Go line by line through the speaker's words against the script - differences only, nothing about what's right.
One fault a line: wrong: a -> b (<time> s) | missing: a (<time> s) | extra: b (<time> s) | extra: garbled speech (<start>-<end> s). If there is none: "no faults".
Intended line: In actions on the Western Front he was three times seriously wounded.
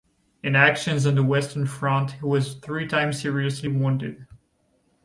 no faults